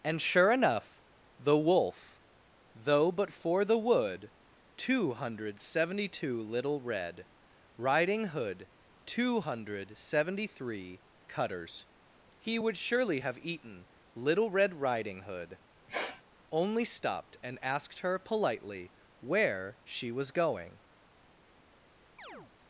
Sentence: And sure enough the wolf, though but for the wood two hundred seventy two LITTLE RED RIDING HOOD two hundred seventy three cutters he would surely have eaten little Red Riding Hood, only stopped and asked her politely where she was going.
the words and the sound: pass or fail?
fail